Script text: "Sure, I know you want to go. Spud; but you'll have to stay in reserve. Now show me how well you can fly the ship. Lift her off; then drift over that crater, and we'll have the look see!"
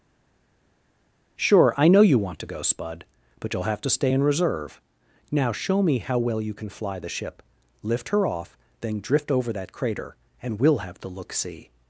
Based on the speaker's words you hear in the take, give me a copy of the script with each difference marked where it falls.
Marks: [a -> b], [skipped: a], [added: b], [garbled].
"Sure, I know you want to go. Spud; but you'll have to stay in reserve. Now show me how well you can fly the ship. Lift her off; then drift over that crater, and we'll have the look see!"